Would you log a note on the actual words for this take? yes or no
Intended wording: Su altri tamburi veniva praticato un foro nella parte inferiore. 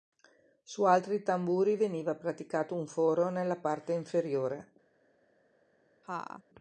no